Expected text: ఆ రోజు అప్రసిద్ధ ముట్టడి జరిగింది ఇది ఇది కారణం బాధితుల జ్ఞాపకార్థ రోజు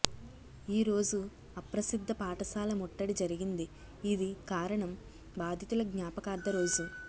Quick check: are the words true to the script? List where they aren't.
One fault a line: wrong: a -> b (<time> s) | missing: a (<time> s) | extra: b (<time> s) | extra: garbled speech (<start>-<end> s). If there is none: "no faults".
wrong: ఆ -> ఈ (0.7 s)
extra: పాఠశాల (2.1 s)
missing: ఇది (4.3 s)